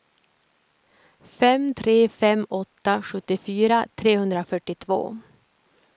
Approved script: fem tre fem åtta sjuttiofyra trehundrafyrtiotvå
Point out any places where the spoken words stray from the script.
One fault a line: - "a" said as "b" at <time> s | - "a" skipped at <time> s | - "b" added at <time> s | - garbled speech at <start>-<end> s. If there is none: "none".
none